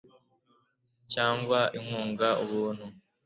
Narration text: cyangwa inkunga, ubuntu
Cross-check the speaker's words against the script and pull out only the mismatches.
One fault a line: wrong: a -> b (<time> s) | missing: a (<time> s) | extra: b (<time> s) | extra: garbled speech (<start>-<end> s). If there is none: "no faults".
no faults